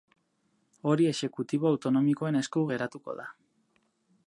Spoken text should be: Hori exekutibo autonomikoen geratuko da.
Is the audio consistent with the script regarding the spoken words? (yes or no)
no